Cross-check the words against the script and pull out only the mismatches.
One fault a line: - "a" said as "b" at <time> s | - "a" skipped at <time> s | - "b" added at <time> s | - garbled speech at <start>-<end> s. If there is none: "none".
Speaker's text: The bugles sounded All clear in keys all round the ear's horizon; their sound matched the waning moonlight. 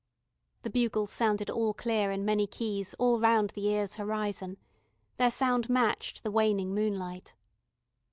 - "many" added at 2.2 s